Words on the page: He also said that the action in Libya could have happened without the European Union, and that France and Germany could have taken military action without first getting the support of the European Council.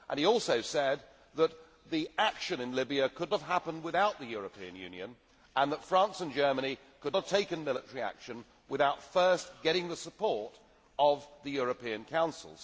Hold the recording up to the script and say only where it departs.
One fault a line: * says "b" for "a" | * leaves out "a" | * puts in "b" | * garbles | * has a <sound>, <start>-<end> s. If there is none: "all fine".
all fine